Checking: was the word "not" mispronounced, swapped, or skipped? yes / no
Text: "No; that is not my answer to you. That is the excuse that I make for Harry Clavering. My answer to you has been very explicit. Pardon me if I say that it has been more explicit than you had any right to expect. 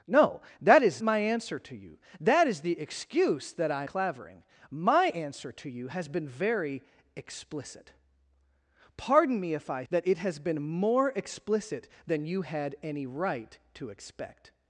yes